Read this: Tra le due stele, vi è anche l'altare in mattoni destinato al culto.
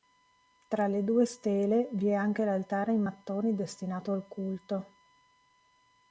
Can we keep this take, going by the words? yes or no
yes